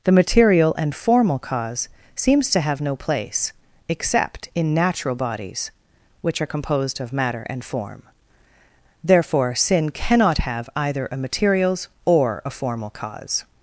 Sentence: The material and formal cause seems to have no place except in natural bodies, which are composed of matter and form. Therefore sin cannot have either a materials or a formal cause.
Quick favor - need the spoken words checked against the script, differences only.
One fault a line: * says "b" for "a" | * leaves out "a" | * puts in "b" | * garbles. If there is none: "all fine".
all fine